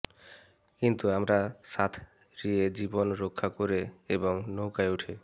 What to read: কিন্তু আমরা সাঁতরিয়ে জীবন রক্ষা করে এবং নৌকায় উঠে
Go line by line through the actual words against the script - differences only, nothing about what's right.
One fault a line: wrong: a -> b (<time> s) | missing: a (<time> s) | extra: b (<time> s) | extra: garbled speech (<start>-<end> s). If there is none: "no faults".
no faults